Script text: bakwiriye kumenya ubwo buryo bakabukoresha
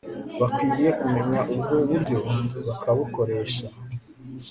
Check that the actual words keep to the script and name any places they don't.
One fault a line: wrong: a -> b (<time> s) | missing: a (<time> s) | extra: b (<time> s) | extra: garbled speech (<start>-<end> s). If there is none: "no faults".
no faults